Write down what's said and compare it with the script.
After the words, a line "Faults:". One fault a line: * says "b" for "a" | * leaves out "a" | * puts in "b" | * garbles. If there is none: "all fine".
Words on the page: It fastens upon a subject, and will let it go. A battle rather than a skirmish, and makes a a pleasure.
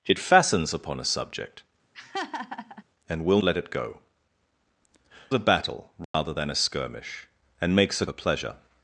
It fastens upon a subject, and will let it go. A battle rather than a skirmish, and makes a a pleasure.
Faults:
all fine